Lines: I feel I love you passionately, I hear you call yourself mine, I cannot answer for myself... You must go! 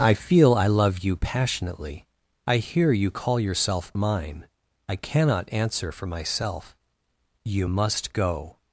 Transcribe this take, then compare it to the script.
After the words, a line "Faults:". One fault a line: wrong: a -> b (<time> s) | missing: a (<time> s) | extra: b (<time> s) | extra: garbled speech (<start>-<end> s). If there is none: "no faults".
I feel I love you passionately, I hear you call yourself mine, I cannot answer for myself... You must go!
Faults:
no faults